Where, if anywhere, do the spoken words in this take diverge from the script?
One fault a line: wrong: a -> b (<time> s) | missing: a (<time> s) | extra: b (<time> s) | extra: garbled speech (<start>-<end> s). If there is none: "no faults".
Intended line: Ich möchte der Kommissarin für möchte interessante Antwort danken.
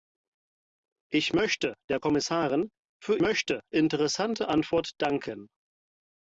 no faults